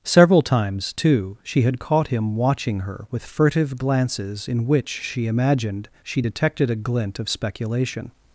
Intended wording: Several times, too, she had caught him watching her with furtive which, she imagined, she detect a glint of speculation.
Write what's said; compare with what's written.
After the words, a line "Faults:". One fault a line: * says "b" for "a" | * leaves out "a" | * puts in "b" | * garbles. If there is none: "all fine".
Several times, too, she had caught him watching her with furtive glances in which, she imagined, she detected a glint of speculation.
Faults:
* puts in "glances in"
* says "detected" for "detect"